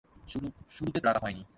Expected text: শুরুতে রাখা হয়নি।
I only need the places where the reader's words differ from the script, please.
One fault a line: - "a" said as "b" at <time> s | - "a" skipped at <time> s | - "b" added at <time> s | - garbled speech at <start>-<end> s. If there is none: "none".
none